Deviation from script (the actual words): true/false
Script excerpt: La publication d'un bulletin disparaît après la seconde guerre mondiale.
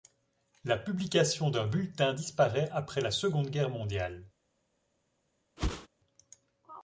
false